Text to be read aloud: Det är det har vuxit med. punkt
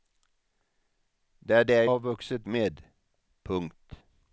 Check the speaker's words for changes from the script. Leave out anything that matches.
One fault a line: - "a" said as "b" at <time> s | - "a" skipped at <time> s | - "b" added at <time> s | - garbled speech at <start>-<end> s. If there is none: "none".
none